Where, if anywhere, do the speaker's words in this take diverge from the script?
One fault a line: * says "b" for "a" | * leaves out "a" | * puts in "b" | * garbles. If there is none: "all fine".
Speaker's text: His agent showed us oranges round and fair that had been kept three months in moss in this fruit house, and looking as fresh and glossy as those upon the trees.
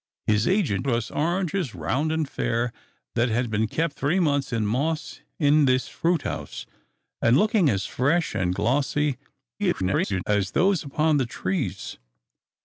* leaves out "showed"
* garbles